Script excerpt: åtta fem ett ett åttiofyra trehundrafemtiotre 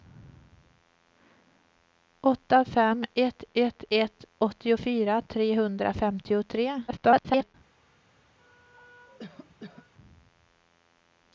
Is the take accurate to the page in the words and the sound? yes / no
no